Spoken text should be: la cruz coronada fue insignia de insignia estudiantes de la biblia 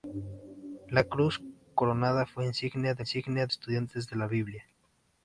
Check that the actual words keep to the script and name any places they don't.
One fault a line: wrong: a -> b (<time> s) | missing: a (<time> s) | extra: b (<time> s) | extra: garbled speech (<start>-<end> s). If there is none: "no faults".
no faults